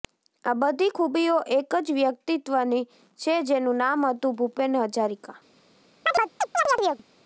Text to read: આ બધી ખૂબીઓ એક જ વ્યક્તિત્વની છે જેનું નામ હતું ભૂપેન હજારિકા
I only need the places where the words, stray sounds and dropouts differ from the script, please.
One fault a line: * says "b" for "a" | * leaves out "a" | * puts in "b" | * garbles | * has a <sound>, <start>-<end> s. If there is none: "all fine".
* has a chirp, 6.1-7.0 s